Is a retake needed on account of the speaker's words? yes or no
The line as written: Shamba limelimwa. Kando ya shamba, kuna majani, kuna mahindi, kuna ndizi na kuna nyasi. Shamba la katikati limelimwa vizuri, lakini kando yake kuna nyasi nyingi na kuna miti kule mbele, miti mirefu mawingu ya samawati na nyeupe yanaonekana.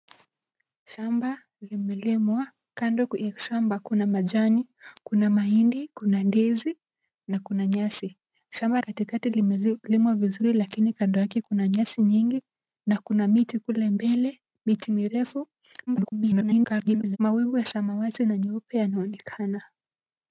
yes